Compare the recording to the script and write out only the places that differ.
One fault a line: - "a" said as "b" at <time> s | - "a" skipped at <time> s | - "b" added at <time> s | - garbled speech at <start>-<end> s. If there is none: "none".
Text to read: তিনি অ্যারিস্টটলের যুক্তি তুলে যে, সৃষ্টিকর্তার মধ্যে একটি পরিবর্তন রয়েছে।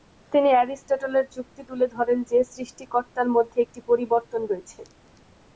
- "ধরেন" added at 1.9 s